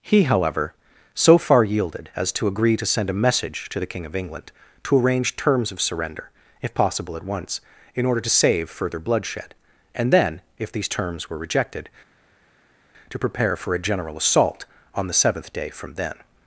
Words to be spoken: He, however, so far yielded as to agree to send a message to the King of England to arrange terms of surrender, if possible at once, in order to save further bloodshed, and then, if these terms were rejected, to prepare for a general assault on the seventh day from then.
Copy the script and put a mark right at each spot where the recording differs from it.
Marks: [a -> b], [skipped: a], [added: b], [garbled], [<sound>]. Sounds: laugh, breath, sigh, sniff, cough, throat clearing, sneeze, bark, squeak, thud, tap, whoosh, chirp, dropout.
He, however, so far yielded as to agree to send a message to the King of England to arrange terms of surrender, if possible at once, in order to save further bloodshed, and then, if these terms were rejected, to prepare for a general assault on the seventh day from then.